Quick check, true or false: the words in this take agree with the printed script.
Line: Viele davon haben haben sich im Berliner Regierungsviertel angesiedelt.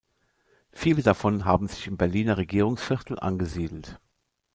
false